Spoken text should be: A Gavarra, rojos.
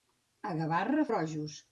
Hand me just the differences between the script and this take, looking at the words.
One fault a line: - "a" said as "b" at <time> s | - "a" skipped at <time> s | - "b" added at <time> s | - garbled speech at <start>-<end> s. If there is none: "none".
none